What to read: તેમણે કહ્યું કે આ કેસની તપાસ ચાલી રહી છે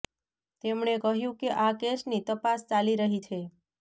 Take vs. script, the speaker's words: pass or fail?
pass